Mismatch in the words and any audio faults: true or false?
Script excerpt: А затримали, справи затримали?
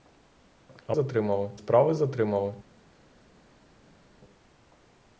false